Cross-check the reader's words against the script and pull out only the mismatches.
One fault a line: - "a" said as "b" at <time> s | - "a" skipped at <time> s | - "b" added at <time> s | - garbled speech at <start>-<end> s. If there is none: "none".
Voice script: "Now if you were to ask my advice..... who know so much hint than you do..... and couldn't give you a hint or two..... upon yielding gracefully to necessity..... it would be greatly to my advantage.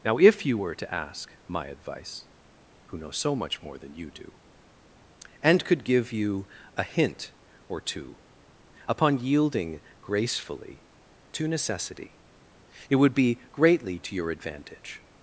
- "hint" said as "more" at 3.6 s
- "couldn't" said as "could" at 5.6 s
- "my" said as "your" at 14.1 s